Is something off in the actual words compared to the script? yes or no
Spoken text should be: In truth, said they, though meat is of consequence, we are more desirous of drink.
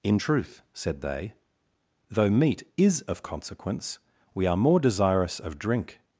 no